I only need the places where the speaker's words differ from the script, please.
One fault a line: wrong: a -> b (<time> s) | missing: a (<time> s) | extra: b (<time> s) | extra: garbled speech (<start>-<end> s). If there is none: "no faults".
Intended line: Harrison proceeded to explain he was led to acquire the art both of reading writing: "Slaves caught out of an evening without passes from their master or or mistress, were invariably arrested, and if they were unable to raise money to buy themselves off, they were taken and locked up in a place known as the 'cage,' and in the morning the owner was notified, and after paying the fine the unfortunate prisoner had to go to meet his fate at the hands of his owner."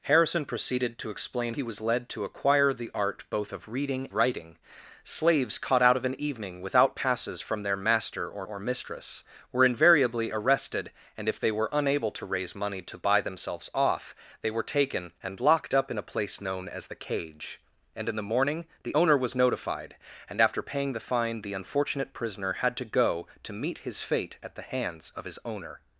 no faults